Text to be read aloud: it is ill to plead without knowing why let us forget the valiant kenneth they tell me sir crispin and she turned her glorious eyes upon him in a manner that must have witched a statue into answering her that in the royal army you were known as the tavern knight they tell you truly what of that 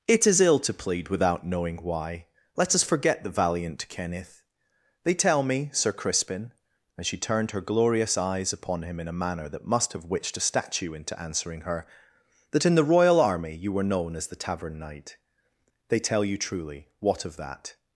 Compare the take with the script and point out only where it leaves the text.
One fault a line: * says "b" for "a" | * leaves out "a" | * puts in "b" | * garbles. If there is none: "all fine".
all fine